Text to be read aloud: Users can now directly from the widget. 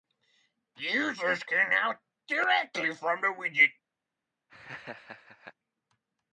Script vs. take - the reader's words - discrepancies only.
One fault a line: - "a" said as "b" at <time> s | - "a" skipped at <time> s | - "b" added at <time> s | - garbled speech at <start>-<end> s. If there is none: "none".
none